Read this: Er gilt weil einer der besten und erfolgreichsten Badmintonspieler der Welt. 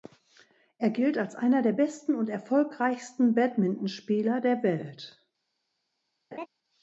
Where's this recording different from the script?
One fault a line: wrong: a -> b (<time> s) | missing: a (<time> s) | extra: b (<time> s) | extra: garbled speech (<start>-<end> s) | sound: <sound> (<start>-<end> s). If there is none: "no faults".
wrong: weil -> als (1.2 s)
sound: laugh (6.3-6.5 s)